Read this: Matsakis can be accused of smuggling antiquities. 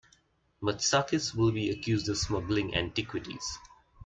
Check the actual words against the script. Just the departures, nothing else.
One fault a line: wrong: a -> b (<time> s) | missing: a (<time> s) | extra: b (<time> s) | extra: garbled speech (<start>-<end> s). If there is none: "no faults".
wrong: can -> will (1.4 s)